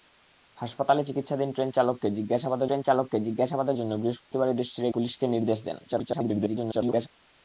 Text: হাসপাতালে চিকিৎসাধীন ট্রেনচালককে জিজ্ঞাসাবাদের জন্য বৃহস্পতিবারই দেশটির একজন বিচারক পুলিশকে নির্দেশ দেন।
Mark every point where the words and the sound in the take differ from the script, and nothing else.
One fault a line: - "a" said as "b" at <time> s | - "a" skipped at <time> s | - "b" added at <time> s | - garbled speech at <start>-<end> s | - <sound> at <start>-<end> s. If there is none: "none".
- "ট্রেনচালককে জিজ্ঞাসাবাদের" added at 2.6 s
- dropout at 4.2-4.3 s
- "একজন বিচারক" skipped at 4.9 s
- garbled speech at 5.9-7.1 s